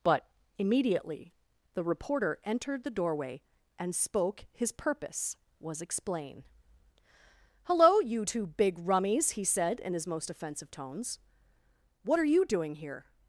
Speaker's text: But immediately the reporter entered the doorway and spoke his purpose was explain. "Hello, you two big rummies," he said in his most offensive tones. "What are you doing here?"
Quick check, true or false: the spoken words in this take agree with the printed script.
true